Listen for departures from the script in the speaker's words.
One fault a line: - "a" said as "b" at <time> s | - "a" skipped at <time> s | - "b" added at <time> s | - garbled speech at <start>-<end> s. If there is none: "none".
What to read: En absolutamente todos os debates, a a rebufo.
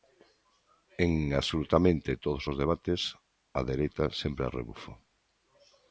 - "dereita sempre" added at 3.7 s